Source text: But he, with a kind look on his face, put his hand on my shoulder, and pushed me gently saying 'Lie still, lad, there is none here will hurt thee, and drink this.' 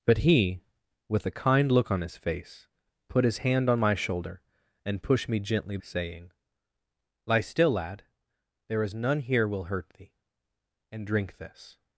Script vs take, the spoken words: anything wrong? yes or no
no